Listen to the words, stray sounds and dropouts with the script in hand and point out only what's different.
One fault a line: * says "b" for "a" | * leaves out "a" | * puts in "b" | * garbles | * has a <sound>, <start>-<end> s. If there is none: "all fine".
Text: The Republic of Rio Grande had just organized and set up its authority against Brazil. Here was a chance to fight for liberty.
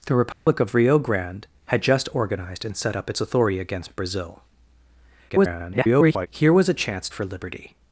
* has a dropout, 0.3-0.5 s
* garbles
* leaves out "to fight"